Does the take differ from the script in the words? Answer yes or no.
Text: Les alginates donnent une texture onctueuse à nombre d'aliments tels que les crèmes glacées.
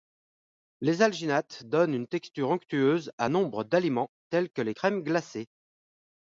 no